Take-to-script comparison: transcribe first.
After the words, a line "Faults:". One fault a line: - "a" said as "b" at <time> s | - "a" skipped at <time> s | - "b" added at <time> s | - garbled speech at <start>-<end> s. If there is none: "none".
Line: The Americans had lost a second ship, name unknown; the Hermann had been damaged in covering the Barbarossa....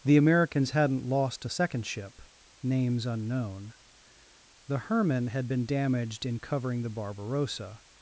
The Americans hadn't lost a second ship, names unknown; the Hermann had been damaged in covering the Barbarossa....
Faults:
- "had" said as "hadn't" at 0.7 s
- "name" said as "names" at 2.6 s